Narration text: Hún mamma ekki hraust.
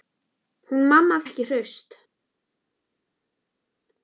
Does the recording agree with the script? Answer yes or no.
yes